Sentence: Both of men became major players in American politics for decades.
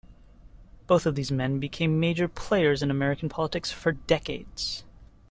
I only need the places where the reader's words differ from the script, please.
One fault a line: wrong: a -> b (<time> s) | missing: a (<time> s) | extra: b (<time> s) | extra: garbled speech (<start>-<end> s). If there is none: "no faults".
extra: these (1.1 s)